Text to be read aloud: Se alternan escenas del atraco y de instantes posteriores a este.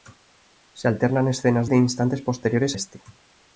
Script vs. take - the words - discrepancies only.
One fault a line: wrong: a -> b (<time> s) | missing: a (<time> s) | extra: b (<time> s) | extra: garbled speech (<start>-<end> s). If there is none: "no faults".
missing: del atraco (1.7 s)
missing: a (2.8 s)